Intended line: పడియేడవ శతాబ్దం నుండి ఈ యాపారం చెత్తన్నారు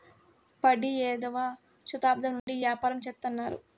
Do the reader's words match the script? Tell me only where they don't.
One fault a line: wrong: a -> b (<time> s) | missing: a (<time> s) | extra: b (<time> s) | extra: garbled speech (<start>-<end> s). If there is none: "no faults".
no faults